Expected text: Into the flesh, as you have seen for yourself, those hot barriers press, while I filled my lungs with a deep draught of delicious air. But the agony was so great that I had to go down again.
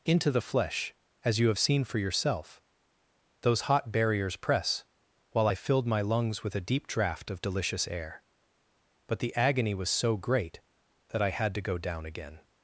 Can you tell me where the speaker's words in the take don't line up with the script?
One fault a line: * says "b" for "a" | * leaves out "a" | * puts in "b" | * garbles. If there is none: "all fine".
all fine